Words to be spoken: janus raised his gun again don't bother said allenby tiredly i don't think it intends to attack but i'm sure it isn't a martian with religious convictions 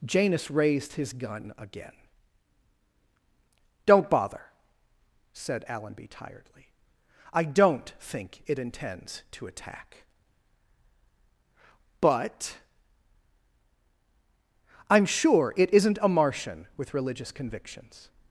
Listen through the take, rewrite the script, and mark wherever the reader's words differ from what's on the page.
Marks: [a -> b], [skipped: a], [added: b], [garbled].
janus raised his gun again don't bother said allenby tiredly i don't think it intends to attack but i'm sure it isn't a martian with religious convictions